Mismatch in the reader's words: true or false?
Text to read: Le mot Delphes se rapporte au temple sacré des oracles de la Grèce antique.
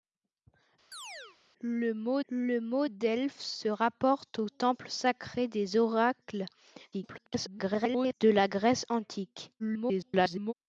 true